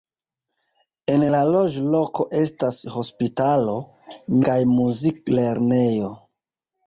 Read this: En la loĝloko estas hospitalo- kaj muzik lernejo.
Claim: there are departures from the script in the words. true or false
false